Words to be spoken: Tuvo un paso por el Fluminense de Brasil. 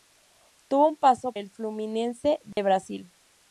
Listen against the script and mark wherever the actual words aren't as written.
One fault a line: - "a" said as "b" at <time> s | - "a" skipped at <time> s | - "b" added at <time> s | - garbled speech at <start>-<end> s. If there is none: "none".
- "por" skipped at 1.3 s